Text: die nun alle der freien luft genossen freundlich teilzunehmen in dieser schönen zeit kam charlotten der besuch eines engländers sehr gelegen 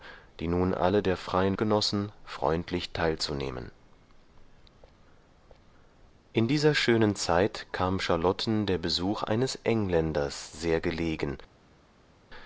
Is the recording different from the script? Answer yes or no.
yes